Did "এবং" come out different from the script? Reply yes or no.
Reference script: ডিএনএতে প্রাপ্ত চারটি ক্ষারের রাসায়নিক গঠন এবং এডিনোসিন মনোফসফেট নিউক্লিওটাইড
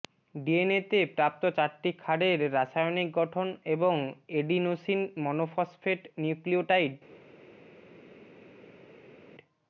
no